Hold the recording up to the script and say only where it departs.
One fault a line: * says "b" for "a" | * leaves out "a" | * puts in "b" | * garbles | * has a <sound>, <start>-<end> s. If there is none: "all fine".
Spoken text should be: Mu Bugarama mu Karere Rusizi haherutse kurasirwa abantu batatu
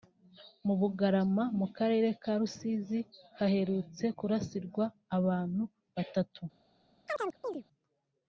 * puts in "ka"
* has a chirp, 7.1-7.6 s